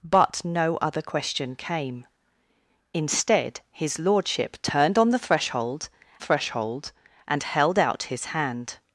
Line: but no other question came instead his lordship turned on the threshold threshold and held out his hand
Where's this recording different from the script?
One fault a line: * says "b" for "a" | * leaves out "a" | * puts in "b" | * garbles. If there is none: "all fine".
all fine